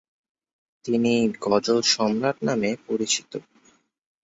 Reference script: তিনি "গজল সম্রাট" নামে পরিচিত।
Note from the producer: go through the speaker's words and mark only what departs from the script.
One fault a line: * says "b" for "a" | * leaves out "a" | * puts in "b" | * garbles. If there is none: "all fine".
all fine